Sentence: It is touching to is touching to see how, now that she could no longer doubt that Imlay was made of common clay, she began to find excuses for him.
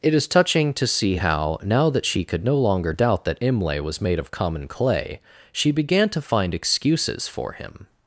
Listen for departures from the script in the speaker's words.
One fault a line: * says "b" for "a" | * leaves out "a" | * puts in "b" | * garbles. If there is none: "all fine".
* leaves out "is touching to"